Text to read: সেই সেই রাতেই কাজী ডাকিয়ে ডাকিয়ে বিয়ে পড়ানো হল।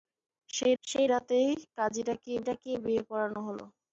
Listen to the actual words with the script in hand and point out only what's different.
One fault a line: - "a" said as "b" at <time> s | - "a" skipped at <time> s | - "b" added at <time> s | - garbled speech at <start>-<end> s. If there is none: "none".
none